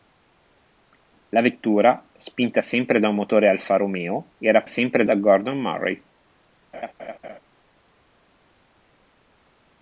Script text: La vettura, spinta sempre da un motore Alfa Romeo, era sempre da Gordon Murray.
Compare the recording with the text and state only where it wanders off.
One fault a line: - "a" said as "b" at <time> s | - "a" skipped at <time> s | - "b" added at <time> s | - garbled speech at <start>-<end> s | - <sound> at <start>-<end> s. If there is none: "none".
- laugh at 6.7-7.4 s